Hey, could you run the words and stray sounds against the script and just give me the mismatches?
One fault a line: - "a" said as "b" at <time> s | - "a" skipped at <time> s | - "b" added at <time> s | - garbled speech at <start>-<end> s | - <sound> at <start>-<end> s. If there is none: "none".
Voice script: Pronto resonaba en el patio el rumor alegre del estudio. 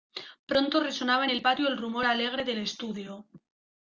none